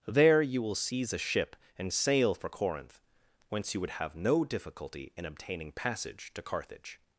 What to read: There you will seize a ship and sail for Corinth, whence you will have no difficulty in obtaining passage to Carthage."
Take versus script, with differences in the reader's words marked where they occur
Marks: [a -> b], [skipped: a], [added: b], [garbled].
There you will seize a ship and sail for Corinth, whence you [will -> would] have no difficulty in obtaining passage to Carthage."